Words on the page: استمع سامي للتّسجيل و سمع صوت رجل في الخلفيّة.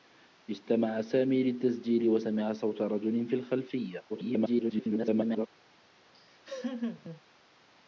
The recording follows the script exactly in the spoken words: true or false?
false